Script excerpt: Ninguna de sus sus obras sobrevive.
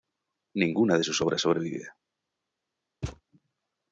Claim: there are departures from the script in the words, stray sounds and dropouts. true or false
true